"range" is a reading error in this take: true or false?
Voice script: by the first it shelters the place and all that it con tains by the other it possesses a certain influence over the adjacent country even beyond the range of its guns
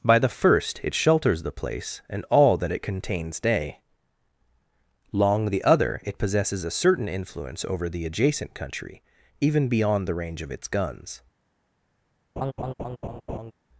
false